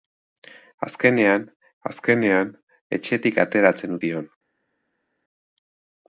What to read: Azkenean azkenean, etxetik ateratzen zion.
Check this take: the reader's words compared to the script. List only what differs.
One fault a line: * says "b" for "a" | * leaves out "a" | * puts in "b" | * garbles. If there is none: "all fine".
all fine